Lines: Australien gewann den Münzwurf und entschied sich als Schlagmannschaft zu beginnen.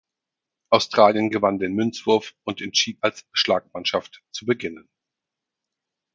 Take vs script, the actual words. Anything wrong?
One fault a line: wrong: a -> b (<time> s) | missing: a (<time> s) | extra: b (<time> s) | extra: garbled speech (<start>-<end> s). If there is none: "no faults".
missing: sich (3.0 s)